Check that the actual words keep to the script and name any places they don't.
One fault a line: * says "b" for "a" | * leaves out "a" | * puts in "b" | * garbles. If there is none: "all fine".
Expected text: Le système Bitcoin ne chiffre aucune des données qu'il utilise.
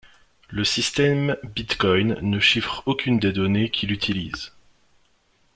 all fine